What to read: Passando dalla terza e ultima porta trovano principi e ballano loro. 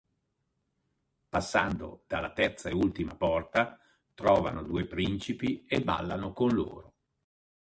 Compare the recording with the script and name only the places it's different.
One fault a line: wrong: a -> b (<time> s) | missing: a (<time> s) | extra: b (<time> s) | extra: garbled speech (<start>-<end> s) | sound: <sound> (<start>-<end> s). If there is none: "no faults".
extra: due (4.6 s)
extra: con (6.3 s)